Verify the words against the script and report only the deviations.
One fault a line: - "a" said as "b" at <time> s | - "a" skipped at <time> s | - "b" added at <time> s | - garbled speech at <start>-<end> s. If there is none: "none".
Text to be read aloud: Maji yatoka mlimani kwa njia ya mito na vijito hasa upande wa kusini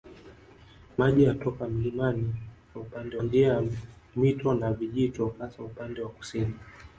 - "kwa" said as "upande" at 2.8 s